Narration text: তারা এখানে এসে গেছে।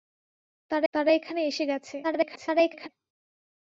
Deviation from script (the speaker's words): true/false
true